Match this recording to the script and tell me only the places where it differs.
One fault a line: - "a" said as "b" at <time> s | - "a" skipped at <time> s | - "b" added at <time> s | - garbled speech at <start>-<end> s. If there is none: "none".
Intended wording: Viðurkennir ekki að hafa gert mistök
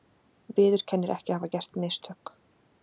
none